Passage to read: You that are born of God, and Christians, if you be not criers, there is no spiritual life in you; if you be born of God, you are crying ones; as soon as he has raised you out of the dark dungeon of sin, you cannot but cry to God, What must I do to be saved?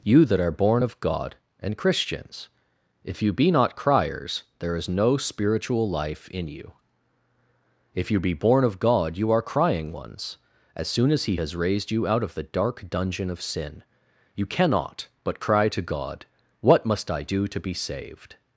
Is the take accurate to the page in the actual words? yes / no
yes